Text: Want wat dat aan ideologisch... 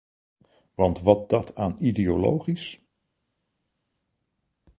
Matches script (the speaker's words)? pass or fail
pass